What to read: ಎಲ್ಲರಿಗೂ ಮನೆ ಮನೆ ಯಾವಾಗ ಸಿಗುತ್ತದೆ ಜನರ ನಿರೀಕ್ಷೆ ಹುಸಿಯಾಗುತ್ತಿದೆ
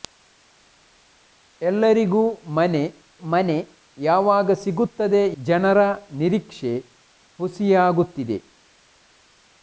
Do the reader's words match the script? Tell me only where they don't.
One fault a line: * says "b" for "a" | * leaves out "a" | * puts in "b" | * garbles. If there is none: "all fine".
all fine